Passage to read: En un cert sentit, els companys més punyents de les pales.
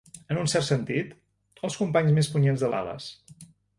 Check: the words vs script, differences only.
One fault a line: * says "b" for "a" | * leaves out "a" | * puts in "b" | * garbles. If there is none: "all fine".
* leaves out "les"